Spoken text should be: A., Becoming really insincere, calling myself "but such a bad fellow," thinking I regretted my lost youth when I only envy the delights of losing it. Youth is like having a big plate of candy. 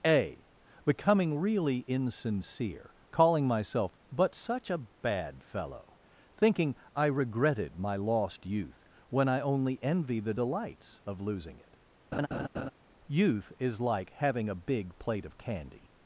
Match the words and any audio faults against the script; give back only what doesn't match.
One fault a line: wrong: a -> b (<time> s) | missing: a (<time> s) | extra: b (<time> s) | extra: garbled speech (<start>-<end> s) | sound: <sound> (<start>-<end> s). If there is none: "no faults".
sound: laugh (12.1-12.7 s)